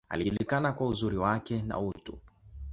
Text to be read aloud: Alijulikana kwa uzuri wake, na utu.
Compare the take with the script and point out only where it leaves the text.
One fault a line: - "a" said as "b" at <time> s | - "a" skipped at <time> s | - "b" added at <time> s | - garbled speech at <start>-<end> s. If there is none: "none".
none